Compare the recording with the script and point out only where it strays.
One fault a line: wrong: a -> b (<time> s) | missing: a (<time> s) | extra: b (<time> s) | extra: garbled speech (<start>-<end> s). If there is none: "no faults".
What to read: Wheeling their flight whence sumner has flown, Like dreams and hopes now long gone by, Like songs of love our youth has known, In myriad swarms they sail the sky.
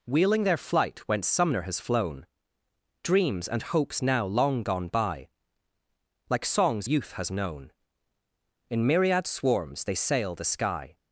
missing: Like (2.2 s)
missing: of love our (6.9 s)